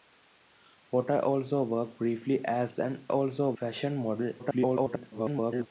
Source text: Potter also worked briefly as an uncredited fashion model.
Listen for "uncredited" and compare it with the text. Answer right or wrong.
wrong